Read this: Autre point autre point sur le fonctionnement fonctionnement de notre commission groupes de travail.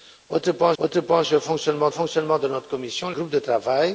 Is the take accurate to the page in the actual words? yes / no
yes